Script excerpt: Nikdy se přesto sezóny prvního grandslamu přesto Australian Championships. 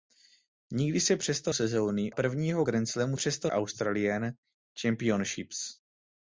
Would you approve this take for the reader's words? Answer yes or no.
yes